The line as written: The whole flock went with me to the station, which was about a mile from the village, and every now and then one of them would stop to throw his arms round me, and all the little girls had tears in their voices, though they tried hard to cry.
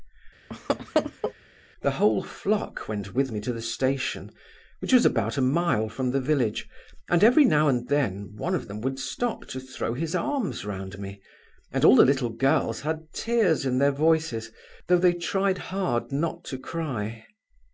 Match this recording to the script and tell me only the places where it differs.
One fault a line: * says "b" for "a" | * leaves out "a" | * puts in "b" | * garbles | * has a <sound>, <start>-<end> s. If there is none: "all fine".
* has a laugh, 0.5-1.3 s
* puts in "not"